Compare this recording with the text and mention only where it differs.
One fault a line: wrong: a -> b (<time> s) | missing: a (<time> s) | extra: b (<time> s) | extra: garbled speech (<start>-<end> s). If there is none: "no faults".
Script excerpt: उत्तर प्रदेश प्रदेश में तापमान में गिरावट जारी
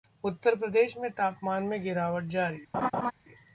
missing: प्रदेश (1.0 s)